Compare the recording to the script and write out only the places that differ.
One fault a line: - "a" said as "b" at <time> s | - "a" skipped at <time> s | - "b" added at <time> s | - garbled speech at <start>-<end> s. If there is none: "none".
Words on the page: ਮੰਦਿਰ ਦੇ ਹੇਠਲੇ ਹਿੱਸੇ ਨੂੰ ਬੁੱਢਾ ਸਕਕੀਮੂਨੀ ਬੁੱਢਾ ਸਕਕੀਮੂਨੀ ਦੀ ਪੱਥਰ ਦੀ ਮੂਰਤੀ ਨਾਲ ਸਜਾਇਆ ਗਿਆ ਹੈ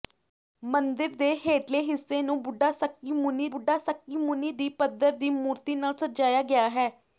none